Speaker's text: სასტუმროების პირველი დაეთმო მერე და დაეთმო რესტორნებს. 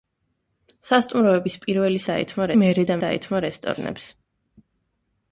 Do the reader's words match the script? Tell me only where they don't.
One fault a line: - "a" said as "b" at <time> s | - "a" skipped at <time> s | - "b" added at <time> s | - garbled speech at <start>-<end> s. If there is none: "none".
none